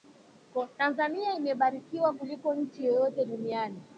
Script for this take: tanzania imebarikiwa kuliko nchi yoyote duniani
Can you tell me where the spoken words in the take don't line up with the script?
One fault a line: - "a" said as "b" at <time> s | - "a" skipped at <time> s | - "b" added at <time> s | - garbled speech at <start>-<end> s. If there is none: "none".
none